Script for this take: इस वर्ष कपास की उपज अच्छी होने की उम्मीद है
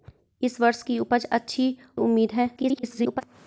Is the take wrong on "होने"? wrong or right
wrong